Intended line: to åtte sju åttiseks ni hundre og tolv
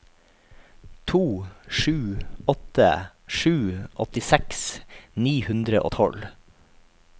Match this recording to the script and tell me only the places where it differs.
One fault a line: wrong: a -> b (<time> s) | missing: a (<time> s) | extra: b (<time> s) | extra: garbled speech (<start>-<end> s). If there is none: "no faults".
extra: sju (1.7 s)